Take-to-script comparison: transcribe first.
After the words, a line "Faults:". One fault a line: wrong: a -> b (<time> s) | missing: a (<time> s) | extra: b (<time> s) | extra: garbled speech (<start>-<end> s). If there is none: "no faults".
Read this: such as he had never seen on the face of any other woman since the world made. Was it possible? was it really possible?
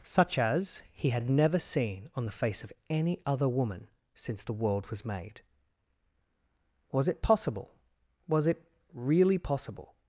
such as he had never seen on the face of any other woman since the world was made. Was it possible? was it really possible?
Faults:
extra: was (4.9 s)